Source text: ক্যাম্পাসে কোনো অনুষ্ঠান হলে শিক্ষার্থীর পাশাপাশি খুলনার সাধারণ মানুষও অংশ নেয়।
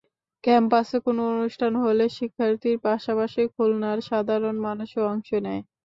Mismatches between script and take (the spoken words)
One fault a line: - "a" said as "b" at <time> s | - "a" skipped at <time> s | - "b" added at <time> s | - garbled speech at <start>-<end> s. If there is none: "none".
none